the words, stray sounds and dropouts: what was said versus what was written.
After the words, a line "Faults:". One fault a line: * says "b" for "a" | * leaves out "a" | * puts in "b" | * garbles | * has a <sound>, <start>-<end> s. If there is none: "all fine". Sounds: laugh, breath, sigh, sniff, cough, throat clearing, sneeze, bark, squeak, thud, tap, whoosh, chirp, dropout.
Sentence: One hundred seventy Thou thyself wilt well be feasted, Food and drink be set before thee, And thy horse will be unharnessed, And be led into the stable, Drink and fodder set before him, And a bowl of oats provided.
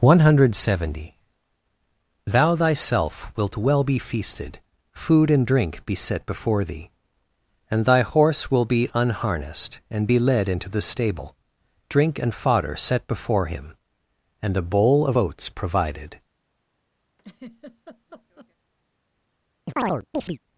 One hundred seventy Thou thyself wilt well be feasted, Food and drink be set before thee, And thy horse will be unharnessed, And be led into the stable, Drink and fodder set before him, And a bowl of oats provided.
Faults:
* has a laugh, 17.2-18.5 s
* has a chirp, 19.6-20.4 s